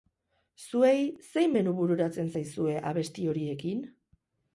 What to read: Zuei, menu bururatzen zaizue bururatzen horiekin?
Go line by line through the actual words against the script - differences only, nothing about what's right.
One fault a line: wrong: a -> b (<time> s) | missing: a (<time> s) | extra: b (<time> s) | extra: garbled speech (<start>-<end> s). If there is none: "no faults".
extra: zein (1.3 s)
wrong: bururatzen -> abesti (2.9 s)